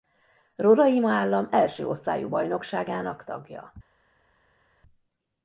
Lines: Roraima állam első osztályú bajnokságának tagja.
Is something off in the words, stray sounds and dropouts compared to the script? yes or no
no